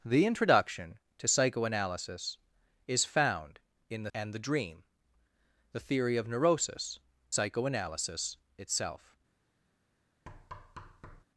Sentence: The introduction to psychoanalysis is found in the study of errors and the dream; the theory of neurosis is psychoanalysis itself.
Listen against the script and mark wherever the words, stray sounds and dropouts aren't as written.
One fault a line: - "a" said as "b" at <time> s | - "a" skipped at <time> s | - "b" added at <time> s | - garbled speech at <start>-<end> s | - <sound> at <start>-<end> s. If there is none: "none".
- "study of errors" skipped at 4.1 s
- "is" skipped at 7.0 s
- thud at 10.3-11.2 s